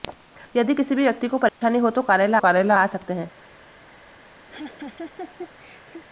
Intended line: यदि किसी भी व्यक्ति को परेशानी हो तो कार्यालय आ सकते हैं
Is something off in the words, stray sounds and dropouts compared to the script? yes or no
yes